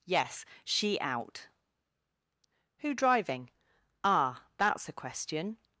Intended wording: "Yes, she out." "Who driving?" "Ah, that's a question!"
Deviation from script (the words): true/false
false